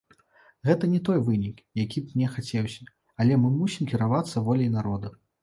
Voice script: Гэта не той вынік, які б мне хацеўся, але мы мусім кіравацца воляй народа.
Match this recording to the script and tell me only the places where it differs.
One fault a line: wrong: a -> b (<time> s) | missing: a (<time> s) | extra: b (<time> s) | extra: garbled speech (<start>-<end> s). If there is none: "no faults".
no faults